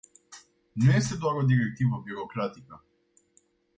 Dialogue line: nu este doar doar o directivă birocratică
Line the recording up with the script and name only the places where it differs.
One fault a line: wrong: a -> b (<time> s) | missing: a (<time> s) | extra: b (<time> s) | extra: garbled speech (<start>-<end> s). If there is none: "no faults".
missing: doar (1.4 s)